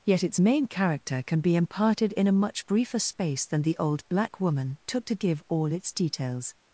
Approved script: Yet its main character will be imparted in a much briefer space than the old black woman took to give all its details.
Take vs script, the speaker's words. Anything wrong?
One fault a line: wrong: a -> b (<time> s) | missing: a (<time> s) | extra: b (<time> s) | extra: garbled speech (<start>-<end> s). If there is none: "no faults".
wrong: will -> can (1.2 s)